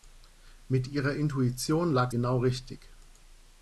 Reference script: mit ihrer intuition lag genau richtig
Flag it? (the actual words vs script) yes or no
no